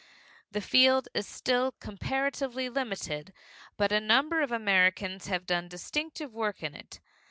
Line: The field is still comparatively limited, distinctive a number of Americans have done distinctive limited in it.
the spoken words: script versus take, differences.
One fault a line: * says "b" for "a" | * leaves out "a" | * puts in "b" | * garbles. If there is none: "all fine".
* says "but" for "distinctive"
* says "work" for "limited"